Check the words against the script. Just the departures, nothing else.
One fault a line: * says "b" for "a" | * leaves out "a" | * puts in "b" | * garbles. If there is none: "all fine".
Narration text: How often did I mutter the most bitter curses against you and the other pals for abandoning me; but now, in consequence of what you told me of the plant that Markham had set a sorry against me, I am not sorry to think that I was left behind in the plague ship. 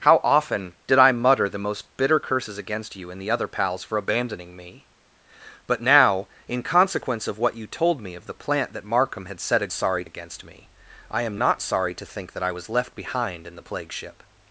all fine